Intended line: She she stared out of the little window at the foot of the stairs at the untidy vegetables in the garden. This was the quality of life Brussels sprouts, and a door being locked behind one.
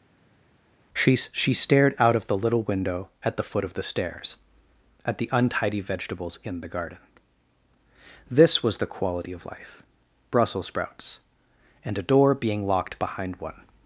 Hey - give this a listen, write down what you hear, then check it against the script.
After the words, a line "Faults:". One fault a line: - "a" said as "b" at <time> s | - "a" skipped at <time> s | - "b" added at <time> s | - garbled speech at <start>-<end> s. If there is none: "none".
She she stared out of the little window at the foot of the stairs at the untidy vegetables in the garden. This was the quality of life Brussels sprouts, and a door being locked behind one.
Faults:
none